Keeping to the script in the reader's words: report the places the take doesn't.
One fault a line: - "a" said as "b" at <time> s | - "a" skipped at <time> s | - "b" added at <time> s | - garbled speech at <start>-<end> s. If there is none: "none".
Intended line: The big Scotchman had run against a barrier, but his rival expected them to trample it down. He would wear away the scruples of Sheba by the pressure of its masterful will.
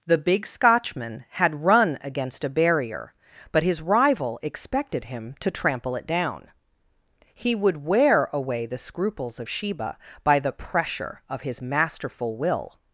- "them" said as "him" at 5.0 s
- "its" said as "his" at 11.4 s